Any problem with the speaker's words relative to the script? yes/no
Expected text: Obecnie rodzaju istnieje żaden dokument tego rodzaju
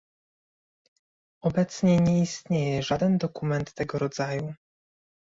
yes